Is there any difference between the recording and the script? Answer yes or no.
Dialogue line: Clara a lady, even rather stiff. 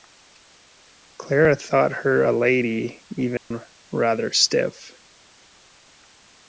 yes